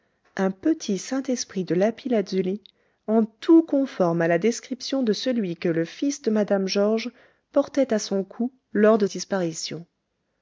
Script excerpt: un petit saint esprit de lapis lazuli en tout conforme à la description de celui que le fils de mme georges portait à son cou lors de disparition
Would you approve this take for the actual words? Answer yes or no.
yes